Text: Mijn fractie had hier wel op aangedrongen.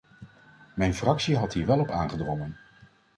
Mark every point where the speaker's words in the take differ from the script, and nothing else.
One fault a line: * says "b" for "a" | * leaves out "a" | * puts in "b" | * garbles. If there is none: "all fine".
all fine